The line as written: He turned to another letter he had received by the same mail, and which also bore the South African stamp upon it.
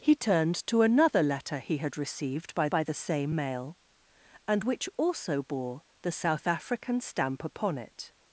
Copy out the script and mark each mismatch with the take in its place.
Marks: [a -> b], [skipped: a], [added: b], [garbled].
He turned to another letter he had received by [added: by] the same mail, and which also bore the South African stamp upon it.